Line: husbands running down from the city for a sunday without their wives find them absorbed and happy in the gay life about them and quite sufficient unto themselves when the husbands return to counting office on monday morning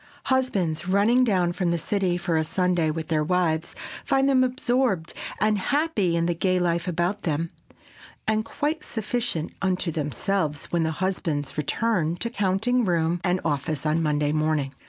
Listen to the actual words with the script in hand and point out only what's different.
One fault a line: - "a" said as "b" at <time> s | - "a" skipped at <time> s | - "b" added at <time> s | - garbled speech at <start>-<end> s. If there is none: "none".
- "without" said as "with" at 2.9 s
- "room and" added at 12.8 s